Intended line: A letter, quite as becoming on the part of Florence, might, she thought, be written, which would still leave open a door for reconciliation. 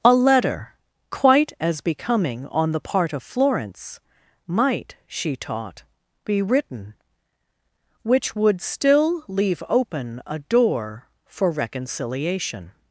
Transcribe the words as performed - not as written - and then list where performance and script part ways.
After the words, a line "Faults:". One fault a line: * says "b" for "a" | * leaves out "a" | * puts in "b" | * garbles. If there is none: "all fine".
A letter, quite as becoming on the part of Florence, might, she taught, be written, which would still leave open a door for reconciliation.
Faults:
* says "taught" for "thought"